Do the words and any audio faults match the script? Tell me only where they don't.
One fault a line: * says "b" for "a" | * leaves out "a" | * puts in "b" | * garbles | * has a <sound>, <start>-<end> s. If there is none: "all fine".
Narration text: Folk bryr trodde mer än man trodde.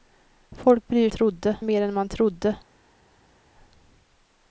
all fine